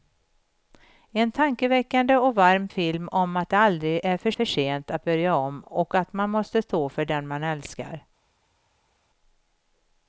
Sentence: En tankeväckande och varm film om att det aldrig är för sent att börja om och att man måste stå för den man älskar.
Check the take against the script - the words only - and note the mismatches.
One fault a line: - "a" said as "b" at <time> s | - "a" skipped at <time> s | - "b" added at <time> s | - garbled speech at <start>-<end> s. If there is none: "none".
- "för" added at 4.3 s